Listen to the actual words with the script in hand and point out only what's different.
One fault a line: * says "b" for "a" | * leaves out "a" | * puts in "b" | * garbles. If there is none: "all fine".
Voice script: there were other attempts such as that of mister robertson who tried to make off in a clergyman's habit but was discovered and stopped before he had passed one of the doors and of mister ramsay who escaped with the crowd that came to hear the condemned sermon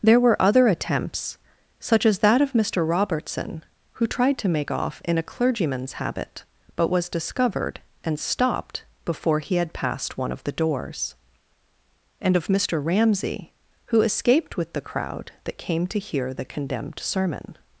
all fine